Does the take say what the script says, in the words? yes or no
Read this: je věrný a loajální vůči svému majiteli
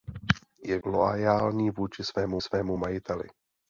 no